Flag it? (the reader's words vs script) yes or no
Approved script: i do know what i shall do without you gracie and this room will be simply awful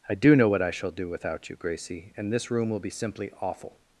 no